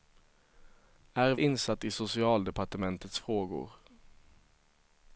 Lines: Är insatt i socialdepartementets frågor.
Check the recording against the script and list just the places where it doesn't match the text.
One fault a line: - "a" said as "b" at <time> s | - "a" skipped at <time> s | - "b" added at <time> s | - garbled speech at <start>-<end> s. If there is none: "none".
none